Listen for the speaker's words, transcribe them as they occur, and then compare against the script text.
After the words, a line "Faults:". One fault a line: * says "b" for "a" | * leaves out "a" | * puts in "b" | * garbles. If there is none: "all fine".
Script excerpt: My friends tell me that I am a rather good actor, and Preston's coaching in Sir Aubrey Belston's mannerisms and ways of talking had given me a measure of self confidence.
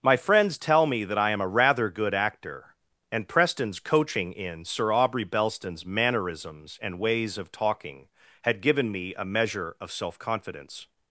My friends tell me that I am a rather good actor, and Preston's coaching in Sir Aubrey Belston's mannerisms and ways of talking had given me a measure of self confidence.
Faults:
all fine